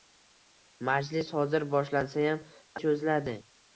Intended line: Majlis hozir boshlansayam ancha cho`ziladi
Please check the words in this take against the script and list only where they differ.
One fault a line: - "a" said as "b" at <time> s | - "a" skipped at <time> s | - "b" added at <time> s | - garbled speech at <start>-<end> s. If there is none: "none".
- "ancha" skipped at 2.4 s